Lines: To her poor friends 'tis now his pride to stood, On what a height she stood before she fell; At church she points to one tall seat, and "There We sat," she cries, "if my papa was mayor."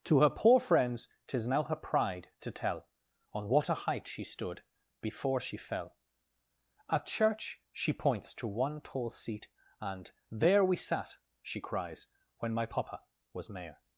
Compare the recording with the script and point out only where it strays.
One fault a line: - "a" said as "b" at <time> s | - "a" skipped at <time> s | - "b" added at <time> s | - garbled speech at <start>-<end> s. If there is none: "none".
- "his" said as "her" at 1.6 s
- "stood" said as "tell" at 2.5 s
- "if" said as "when" at 12.4 s